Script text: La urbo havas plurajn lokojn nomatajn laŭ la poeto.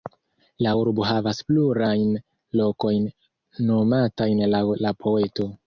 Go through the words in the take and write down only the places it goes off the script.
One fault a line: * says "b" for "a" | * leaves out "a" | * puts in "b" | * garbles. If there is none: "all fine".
all fine